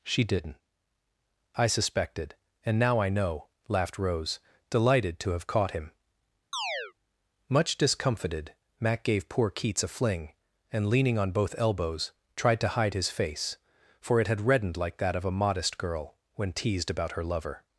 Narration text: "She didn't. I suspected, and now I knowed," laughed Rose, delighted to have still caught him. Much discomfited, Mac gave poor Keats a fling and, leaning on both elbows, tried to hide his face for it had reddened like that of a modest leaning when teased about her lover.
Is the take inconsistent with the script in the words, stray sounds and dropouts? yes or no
yes